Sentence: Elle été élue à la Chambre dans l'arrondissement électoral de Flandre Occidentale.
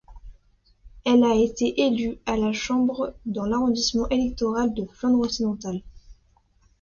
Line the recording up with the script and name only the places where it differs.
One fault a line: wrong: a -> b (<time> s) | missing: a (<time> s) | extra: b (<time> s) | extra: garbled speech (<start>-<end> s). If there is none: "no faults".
extra: a (1.2 s)